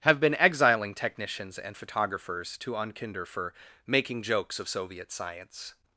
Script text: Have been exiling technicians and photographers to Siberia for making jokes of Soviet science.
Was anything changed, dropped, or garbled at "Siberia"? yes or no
yes